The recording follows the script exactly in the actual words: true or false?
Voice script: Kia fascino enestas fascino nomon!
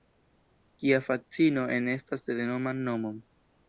false